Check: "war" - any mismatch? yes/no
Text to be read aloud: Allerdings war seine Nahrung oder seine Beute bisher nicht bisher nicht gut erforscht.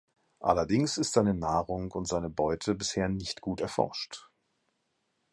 yes